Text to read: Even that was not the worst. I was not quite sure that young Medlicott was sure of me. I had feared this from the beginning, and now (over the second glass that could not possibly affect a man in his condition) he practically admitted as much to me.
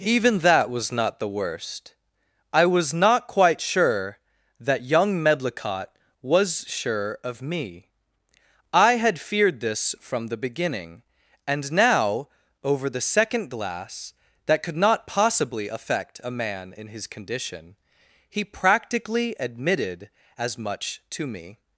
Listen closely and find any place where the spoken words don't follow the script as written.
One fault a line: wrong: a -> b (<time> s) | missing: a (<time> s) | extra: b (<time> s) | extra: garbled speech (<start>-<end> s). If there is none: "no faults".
no faults